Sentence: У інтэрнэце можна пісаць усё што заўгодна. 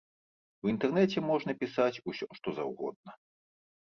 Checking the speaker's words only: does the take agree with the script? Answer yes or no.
yes